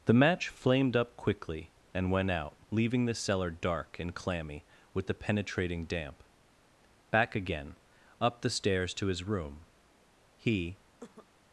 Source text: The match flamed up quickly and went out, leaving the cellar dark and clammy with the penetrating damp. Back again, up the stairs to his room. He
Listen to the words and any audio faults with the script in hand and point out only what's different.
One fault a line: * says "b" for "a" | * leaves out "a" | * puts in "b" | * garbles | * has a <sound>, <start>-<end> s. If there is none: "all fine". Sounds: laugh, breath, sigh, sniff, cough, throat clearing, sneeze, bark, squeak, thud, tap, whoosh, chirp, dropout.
* has a cough, 11.0-11.3 s